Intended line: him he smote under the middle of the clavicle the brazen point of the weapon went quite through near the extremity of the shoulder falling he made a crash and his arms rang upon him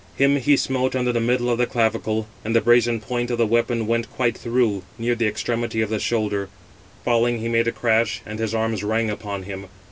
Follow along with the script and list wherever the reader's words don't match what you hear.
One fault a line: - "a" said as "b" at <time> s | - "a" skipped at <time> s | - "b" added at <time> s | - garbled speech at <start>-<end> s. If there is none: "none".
- "and" added at 2.4 s